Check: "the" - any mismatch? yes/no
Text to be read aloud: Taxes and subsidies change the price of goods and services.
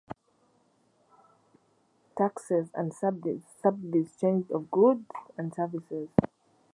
yes